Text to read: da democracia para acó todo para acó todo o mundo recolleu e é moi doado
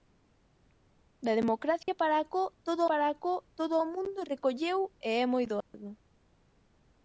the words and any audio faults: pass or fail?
fail